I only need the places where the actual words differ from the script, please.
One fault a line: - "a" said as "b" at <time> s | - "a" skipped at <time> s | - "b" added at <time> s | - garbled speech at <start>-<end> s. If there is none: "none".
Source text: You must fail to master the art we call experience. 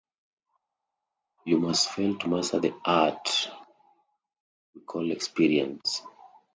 none